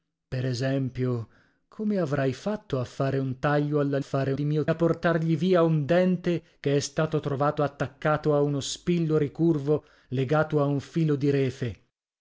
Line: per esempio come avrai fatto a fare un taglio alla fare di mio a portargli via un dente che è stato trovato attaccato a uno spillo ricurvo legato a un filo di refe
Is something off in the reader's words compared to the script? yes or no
no